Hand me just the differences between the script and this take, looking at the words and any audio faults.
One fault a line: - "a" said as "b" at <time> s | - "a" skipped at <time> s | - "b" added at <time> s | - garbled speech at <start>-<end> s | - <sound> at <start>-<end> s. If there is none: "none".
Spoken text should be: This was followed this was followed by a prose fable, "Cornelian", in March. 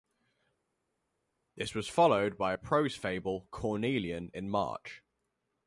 - "this was followed" skipped at 2.4 s